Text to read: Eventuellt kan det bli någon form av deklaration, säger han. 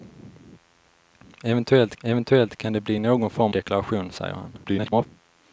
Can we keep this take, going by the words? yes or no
no